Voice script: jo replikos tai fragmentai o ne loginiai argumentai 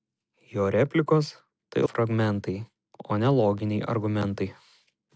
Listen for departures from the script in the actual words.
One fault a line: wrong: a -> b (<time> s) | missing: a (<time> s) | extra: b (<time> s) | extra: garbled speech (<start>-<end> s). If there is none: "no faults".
no faults